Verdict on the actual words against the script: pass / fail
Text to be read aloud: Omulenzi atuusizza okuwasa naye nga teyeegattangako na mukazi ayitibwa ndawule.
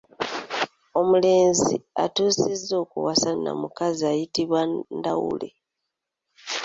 fail